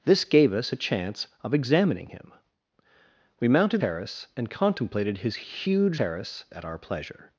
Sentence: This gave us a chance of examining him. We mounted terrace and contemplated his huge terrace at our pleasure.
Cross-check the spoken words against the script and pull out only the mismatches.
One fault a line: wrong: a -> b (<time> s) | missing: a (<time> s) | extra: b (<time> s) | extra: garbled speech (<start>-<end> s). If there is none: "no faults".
no faults